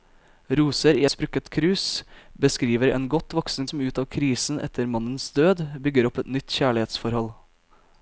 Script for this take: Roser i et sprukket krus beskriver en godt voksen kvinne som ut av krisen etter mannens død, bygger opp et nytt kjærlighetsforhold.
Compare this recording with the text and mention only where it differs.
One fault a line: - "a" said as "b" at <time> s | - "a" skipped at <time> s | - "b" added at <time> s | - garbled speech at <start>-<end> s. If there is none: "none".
- "et" skipped at 1.0 s
- "kvinne" skipped at 3.7 s